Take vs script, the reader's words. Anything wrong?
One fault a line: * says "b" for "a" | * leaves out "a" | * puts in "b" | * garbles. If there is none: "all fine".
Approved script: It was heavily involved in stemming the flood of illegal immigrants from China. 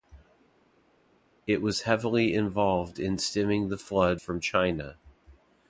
* leaves out "of illegal immigrants"